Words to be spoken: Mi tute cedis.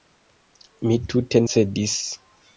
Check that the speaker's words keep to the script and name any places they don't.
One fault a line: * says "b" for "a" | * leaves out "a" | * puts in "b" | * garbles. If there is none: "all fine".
all fine